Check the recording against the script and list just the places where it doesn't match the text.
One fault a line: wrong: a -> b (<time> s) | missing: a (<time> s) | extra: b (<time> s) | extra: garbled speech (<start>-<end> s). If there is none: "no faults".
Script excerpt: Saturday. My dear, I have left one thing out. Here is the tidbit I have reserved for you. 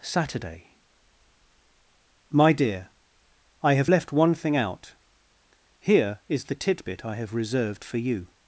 no faults